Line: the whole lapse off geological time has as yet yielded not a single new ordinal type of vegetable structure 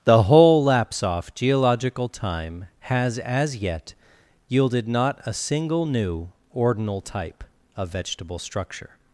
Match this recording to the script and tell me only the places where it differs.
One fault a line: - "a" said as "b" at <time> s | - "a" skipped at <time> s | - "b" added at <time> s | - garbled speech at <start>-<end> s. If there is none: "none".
none